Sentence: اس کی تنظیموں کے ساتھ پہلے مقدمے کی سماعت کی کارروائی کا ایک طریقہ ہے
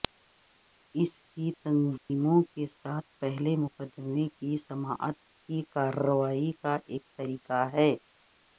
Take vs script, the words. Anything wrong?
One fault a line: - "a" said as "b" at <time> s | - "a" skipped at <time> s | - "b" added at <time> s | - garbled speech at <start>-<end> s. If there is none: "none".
none